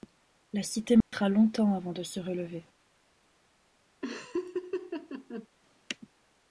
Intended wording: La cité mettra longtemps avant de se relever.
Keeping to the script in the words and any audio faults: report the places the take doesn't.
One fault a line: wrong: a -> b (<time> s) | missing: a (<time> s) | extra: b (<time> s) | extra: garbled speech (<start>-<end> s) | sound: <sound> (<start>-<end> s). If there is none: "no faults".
sound: dropout (1.0-1.1 s)
sound: laugh (4.0-5.5 s)